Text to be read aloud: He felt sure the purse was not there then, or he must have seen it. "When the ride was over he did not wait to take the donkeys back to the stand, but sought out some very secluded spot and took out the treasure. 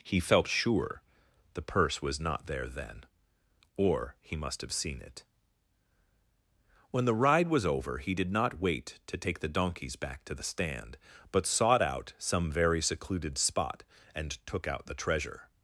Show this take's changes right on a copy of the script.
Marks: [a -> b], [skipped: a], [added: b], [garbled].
He felt sure the purse was not there then, or he must have seen it. "When the ride was over he did not wait to take the donkeys back to the stand, but sought out some very secluded spot and took out the treasure.